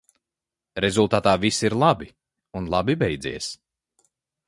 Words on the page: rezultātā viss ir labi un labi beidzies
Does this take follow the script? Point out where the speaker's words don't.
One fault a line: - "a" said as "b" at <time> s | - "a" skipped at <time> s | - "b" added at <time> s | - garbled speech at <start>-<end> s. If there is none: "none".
none